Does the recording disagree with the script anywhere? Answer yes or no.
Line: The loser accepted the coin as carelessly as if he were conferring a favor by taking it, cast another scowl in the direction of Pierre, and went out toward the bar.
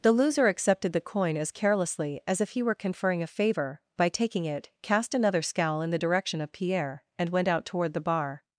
no